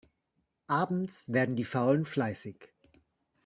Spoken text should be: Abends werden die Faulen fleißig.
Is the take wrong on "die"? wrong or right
right